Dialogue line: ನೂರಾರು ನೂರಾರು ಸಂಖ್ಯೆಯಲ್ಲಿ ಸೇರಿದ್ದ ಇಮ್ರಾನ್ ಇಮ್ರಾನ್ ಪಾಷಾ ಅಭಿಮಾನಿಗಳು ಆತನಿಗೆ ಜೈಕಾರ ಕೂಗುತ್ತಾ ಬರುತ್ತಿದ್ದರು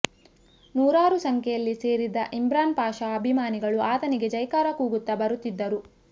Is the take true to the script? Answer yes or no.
no